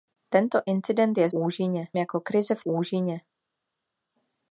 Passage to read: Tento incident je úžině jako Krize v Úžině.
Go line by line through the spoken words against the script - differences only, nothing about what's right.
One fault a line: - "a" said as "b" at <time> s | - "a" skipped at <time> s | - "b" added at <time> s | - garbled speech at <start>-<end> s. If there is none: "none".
none